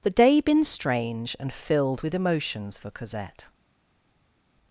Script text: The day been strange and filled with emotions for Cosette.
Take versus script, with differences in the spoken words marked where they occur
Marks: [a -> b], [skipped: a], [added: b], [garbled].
The day been strange and filled with emotions for Cosette.